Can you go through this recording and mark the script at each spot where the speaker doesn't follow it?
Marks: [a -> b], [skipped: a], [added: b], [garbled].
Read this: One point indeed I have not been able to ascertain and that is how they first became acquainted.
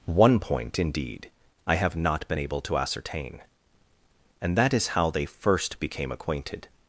One point indeed I have not been able to ascertain and that is how they first became acquainted.